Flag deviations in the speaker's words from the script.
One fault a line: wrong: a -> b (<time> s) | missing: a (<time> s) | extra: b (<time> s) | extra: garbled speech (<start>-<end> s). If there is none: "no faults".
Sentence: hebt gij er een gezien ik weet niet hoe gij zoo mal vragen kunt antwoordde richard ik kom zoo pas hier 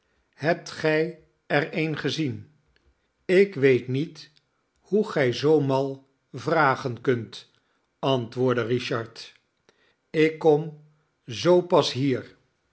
no faults